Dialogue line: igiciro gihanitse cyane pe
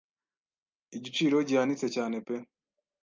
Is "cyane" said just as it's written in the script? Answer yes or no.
yes